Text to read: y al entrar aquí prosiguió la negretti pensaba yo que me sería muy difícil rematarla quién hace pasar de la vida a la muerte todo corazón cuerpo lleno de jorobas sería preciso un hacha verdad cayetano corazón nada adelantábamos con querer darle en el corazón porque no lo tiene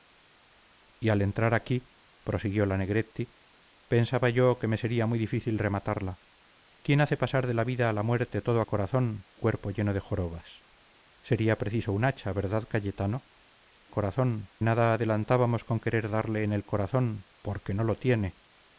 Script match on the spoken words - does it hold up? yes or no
yes